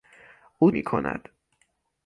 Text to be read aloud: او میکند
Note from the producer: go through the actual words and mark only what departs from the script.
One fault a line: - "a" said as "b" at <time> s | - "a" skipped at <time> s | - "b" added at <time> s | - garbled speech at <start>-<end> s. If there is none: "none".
none